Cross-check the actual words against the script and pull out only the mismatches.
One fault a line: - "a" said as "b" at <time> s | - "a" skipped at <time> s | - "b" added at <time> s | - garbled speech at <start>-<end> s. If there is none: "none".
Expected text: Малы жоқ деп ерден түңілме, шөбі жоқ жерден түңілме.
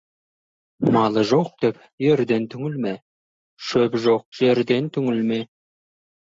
none